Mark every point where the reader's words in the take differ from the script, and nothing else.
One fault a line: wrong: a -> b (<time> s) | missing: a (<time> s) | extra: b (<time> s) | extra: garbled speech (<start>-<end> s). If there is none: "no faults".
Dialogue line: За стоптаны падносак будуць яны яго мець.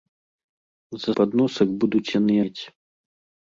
missing: стоптаны (1.1 s)
missing: яго (2.3 s)